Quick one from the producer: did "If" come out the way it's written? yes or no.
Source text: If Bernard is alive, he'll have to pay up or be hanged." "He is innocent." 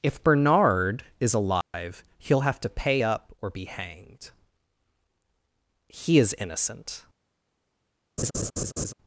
yes